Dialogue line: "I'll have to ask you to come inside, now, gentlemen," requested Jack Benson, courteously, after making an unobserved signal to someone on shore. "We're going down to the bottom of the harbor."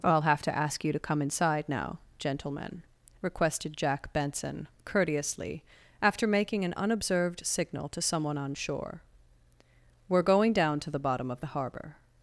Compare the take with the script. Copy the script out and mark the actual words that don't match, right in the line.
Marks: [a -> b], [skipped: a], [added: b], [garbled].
"I'll have to ask you to come inside, now, gentlemen," requested Jack Benson, courteously, after making an unobserved signal to someone on shore. "We're going down to the bottom of the harbor."